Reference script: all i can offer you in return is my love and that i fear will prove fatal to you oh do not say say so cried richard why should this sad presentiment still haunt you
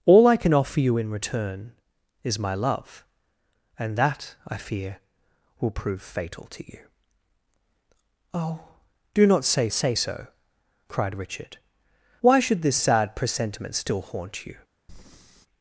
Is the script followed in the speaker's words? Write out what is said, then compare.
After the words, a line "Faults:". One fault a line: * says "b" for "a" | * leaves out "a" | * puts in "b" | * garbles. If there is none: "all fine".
all i can offer you in return is my love and that i fear will prove fatal to you oh do not say say so cried richard why should this sad presentiment still haunt you
Faults:
all fine